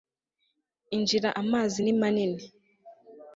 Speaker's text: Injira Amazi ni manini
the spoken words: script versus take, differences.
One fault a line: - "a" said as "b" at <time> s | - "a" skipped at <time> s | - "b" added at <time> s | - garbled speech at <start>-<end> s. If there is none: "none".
none